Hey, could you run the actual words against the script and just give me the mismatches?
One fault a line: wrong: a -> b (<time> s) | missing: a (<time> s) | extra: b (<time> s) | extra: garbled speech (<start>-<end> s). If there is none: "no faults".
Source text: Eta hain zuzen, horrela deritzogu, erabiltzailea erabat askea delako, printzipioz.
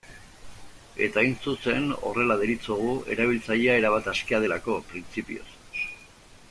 no faults